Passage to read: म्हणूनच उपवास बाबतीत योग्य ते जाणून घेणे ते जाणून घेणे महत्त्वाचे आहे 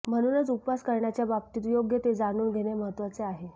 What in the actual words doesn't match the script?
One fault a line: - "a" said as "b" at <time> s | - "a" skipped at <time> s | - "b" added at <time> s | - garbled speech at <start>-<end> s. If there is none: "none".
- "करण्याच्या" added at 0.8 s
- "ते जाणून घेणे" skipped at 2.7 s